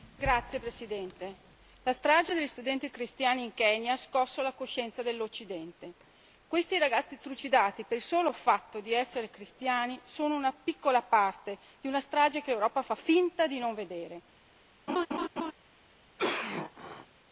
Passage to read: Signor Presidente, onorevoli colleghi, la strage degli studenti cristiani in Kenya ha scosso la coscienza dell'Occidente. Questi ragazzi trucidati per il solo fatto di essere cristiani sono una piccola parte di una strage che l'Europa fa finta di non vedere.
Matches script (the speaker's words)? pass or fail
pass